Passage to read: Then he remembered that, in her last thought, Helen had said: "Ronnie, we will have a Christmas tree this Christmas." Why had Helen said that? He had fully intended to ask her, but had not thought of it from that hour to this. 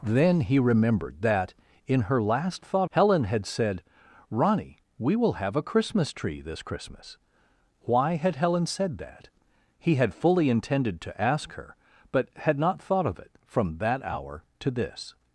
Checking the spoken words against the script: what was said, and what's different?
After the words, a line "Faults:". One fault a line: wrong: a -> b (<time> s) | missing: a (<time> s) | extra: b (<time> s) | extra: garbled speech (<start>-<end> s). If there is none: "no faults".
Then he remembered that, in her last thought, Helen had said: "Ronnie, we will have a Christmas tree this Christmas." Why had Helen said that? He had fully intended to ask her, but had not thought of it from that hour to this.
Faults:
no faults